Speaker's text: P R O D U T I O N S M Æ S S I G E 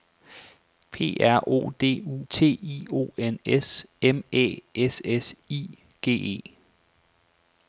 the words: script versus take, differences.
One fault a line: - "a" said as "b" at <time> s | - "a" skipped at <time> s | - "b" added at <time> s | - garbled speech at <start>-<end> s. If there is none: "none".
none